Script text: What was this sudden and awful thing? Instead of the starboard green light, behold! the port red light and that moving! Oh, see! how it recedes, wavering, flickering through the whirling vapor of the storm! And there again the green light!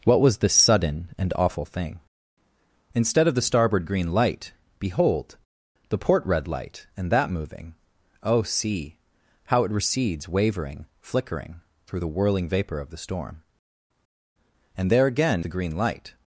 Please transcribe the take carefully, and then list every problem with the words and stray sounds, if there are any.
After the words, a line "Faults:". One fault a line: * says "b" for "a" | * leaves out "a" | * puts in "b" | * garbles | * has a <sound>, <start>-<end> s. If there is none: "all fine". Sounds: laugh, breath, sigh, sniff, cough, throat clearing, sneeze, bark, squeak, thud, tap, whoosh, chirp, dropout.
What was this sudden and awful thing? Instead of the starboard green light, behold! the port red light and that moving! Oh, see! how it recedes, wavering, flickering through the whirling vapor of the storm! And there again the green light!
Faults:
all fine